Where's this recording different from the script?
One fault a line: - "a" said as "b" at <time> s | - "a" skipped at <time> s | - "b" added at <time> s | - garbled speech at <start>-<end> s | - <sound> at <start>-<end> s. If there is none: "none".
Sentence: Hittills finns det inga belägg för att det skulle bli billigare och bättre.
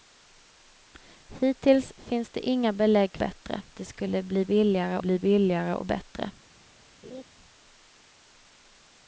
- "för" said as "bättre" at 3.2 s
- "bli billigare" added at 5.0 s
- laugh at 7.0-7.2 s